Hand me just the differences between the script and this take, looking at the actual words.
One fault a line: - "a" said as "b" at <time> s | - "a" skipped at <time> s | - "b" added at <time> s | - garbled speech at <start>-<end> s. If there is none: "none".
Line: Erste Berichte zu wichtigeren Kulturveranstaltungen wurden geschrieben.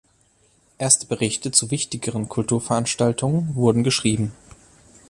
none